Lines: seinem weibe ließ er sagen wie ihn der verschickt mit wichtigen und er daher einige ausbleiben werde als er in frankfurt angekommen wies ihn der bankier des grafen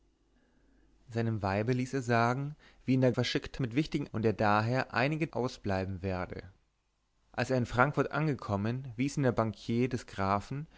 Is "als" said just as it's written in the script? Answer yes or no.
yes